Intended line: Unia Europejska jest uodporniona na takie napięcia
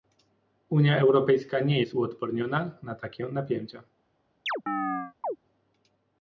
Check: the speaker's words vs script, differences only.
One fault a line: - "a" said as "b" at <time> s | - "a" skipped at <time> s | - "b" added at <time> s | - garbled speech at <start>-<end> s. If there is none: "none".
- "nie" added at 1.6 s